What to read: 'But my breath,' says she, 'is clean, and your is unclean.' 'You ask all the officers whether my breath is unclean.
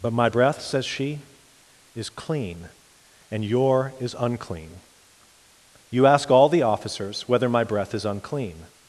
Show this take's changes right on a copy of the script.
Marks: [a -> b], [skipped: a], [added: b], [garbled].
'But my breath,' says she, 'is clean, and your is unclean.' 'You ask all the officers whether my breath is unclean.